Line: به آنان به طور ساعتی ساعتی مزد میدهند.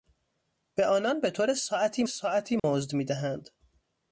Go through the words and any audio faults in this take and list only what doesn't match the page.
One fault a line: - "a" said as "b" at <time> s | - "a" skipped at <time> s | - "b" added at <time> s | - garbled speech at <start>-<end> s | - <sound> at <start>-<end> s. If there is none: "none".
- dropout at 2.6-2.6 s